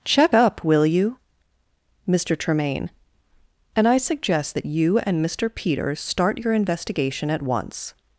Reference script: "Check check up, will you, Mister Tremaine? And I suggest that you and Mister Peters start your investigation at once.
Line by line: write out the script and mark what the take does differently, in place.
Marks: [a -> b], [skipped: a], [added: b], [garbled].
"Check [skipped: check] up, will you, Mister Tremaine? And I suggest that you and Mister Peters start your investigation at once.